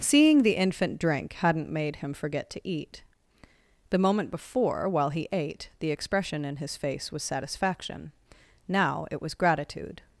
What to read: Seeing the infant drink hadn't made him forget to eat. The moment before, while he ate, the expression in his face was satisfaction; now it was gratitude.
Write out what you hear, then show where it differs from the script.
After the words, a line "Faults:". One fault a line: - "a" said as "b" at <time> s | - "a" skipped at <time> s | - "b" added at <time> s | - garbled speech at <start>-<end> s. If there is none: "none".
Seeing the infant drink hadn't made him forget to eat. The moment before, while he ate, the expression in his face was satisfaction; now it was gratitude.
Faults:
none